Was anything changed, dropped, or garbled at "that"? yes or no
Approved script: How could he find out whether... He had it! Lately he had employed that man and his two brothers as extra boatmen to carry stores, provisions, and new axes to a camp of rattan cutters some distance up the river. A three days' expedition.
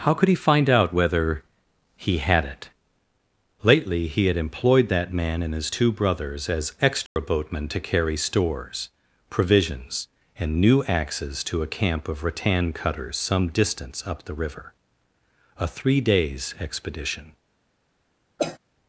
no